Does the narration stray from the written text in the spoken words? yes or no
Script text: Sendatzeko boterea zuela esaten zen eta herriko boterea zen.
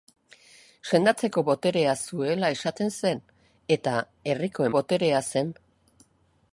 no